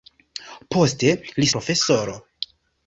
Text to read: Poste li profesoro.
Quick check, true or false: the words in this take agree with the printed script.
true